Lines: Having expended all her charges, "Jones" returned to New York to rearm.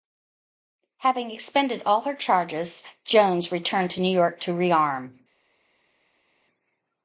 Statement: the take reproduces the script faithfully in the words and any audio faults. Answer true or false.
true